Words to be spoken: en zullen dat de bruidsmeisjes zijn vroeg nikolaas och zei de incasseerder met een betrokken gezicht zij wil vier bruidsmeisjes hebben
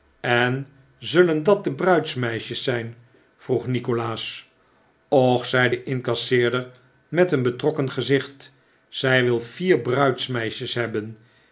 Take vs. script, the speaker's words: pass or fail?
pass